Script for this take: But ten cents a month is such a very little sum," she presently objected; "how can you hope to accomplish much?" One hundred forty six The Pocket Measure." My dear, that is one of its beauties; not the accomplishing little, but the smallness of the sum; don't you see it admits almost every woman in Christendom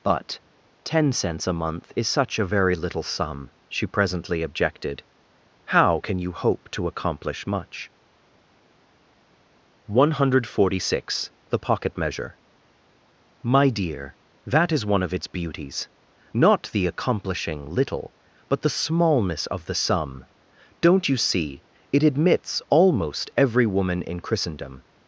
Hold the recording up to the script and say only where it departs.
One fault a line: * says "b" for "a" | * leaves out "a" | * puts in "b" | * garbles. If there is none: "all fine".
all fine